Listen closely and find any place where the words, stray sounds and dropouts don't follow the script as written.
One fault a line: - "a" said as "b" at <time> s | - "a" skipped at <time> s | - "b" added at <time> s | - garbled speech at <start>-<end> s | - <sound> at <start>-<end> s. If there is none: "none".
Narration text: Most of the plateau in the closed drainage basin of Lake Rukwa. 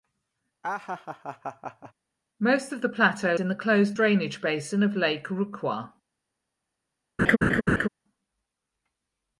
- laugh at 0.6-1.9 s
- laugh at 7.2-7.9 s